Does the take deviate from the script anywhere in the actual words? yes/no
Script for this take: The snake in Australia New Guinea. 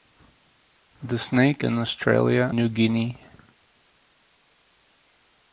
no